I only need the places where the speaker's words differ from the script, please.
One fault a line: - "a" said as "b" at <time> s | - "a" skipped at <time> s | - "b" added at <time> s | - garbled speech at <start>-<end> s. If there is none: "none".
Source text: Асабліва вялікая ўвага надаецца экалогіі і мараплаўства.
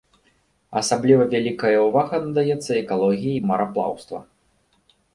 none